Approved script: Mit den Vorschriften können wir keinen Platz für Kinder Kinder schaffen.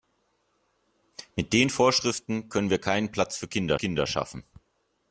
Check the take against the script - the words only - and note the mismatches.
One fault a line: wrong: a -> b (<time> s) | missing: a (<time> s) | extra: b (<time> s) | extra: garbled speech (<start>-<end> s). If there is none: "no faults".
no faults